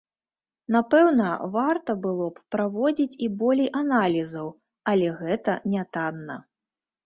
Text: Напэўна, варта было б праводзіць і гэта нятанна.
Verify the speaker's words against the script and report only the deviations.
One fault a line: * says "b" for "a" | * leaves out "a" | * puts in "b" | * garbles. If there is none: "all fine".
* puts in "болей аналізаў але"